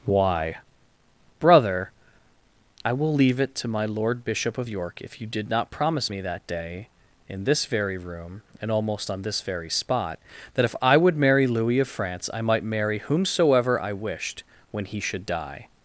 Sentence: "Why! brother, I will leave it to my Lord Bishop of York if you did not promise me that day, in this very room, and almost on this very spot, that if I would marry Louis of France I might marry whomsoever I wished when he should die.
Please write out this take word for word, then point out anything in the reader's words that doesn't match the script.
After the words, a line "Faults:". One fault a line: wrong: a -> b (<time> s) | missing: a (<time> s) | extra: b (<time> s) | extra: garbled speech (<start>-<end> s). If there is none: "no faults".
"Why! brother, I will leave it to my Lord Bishop of York if you did not promise me that day, in this very room, and almost on this very spot, that if I would marry Louis of France I might marry whomsoever I wished when he should die.
Faults:
no faults